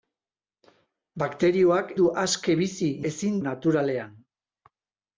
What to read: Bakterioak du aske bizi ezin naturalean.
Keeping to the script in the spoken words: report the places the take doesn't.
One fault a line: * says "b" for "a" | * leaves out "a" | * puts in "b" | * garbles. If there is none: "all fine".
all fine